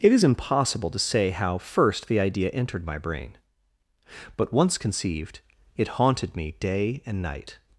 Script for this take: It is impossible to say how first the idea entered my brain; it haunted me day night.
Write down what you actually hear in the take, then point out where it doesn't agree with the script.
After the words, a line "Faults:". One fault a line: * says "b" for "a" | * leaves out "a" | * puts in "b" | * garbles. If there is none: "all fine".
It is impossible to say how first the idea entered my brain; but once conceived, it haunted me day and night.
Faults:
* puts in "but once conceived"
* puts in "and"